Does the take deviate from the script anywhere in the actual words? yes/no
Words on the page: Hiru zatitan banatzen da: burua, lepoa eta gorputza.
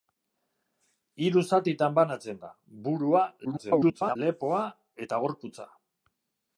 yes